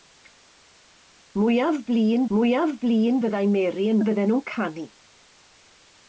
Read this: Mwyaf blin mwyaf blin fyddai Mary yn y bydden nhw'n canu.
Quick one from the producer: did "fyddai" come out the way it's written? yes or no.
yes